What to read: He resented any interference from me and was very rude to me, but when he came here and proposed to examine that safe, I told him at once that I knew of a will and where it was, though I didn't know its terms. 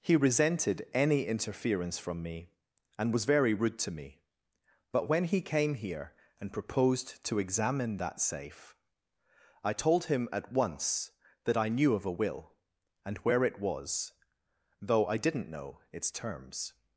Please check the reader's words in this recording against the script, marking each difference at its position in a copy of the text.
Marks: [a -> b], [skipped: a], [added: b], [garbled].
He resented any interference from me and was very rude to me, but when he came here and proposed to examine that safe, I told him at once that I knew of a will and where it was, though I didn't know its terms.